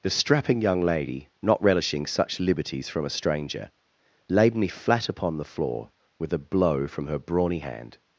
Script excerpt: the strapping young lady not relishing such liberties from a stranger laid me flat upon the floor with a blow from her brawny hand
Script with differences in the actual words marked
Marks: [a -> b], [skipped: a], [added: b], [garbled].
the strapping young lady not relishing such liberties from a stranger laid me flat upon the floor with a blow from her brawny hand